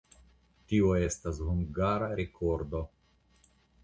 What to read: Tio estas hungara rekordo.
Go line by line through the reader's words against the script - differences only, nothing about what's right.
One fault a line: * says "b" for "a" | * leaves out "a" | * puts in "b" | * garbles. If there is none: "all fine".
all fine